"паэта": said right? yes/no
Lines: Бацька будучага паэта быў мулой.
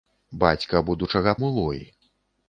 no